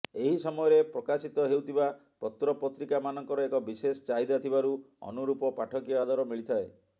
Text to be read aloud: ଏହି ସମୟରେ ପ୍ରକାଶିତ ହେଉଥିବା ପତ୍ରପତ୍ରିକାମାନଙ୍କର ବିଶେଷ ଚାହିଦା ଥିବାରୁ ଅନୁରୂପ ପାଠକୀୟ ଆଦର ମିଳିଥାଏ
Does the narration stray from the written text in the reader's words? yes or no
yes